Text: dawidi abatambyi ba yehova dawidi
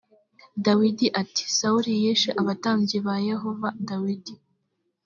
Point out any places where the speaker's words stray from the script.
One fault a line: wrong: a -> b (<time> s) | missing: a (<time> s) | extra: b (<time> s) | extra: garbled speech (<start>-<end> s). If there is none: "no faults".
extra: ati sawuli yishe (1.2 s)